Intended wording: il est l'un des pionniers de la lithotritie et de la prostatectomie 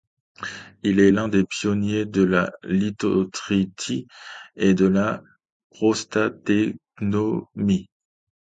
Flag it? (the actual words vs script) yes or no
no